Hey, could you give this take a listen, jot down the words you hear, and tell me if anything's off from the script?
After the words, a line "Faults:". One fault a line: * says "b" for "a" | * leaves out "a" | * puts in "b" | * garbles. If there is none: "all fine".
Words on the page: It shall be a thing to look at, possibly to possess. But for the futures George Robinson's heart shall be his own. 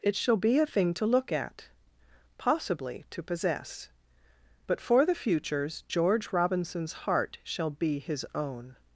It shall be a thing to look at, possibly to possess. But for the futures George Robinson's heart shall be his own.
Faults:
all fine